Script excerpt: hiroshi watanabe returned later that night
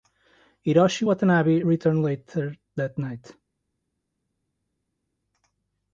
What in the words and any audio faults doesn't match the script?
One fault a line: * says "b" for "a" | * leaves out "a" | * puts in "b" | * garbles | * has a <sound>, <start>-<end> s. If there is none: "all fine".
all fine